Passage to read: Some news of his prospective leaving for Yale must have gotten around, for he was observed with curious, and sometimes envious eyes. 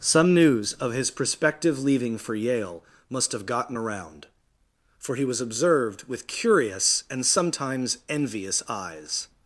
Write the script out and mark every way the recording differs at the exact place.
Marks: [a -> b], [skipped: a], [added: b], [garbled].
Some news of his prospective leaving for Yale must have gotten around, for he was observed with curious, and sometimes envious eyes.